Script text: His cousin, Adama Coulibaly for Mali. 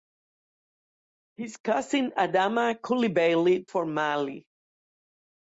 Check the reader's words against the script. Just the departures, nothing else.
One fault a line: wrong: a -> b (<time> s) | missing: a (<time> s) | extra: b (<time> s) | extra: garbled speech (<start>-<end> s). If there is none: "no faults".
no faults